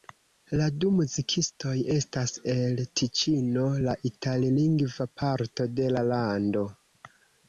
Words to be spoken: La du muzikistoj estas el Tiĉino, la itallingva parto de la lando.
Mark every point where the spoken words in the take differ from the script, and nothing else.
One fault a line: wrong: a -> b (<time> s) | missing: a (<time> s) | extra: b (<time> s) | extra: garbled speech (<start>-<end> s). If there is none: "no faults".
no faults